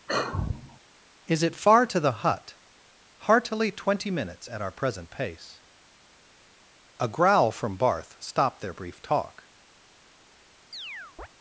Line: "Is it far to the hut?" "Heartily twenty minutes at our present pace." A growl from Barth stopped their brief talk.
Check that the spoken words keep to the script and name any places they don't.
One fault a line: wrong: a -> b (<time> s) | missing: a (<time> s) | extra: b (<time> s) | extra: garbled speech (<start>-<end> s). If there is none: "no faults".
no faults